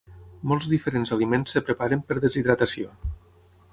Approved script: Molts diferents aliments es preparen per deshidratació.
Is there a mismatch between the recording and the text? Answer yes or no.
no